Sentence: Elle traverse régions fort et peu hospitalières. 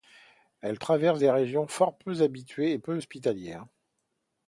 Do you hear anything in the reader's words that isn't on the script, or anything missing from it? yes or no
yes